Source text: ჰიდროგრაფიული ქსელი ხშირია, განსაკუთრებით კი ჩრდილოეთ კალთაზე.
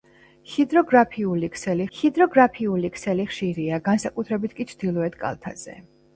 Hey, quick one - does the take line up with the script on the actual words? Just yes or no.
no